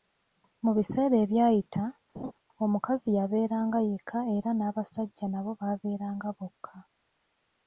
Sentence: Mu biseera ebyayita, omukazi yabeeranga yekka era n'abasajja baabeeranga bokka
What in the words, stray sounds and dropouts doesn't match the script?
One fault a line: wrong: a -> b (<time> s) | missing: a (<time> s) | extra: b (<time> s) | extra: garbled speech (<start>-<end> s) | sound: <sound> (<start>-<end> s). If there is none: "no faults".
sound: laugh (2.1-2.3 s)
extra: nabo (5.3 s)